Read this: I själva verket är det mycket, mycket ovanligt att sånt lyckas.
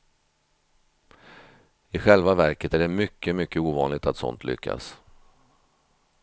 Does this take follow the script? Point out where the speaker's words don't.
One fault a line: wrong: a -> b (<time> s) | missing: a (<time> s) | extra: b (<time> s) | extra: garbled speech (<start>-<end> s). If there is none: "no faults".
no faults